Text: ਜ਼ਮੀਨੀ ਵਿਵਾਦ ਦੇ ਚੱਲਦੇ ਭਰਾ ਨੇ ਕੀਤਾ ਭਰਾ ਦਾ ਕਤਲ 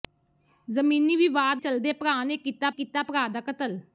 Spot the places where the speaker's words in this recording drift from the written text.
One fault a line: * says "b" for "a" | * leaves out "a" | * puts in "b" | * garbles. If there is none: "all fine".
* leaves out "ਦੇ"
* puts in "ਕੀਤਾ"